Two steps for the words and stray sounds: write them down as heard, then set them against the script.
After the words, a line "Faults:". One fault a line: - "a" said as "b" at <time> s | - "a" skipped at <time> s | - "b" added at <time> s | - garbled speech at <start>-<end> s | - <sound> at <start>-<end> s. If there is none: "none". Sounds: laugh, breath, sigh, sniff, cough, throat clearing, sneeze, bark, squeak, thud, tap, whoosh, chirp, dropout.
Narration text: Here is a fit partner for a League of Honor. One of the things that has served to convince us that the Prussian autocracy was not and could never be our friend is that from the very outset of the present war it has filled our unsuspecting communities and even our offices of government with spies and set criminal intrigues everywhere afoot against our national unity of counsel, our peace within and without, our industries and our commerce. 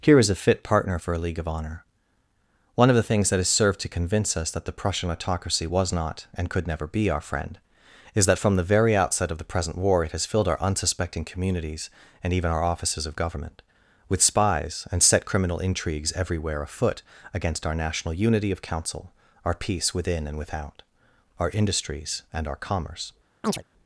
Here is a fit partner for a League of Honor. One of the things that has served to convince us that the Prussian autocracy was not and could never be our friend is that from the very outset of the present war it has filled our unsuspecting communities and even our offices of government with spies and set criminal intrigues everywhere afoot against our national unity of counsel, our peace within and without, our industries and our commerce.
Faults:
- chirp at 23.4-23.6 s